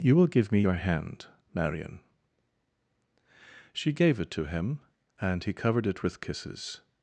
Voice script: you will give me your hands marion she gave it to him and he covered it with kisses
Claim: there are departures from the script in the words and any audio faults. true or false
true